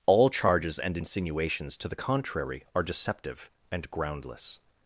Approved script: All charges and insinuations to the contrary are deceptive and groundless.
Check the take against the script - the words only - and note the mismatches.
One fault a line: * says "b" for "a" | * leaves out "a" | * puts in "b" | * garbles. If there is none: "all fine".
all fine